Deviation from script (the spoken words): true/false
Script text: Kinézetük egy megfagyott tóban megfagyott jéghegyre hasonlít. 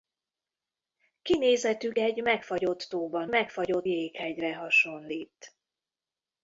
false